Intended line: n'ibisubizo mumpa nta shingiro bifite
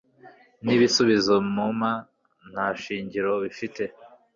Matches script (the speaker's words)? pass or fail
pass